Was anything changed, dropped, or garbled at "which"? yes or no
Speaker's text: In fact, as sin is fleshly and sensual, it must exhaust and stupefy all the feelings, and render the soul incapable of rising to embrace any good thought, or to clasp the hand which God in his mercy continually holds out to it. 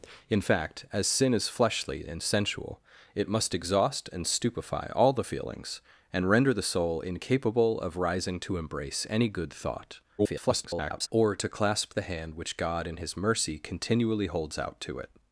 no